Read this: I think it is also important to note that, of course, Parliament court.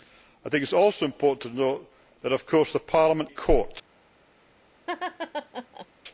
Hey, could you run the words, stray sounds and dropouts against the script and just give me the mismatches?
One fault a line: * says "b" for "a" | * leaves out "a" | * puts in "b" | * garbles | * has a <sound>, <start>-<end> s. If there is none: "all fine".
* has a laugh, 4.9-5.9 s